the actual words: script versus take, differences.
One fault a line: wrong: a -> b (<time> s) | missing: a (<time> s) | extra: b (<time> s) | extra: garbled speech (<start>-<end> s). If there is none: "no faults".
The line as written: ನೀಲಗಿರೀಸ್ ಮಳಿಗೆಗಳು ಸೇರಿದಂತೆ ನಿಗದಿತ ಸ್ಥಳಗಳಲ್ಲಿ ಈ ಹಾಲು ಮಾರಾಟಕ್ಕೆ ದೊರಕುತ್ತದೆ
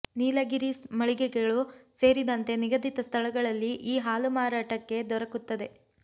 no faults